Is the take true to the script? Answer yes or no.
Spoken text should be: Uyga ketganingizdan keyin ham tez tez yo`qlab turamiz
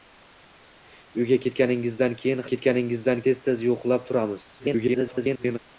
no